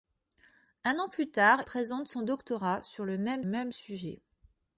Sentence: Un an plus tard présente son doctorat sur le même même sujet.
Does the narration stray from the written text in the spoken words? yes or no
no